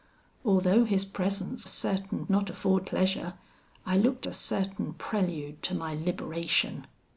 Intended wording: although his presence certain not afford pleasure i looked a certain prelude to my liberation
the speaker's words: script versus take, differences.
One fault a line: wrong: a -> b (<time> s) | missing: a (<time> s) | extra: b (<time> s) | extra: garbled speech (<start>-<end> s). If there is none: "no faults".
no faults